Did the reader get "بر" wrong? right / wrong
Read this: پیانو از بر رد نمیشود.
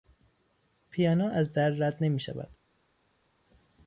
wrong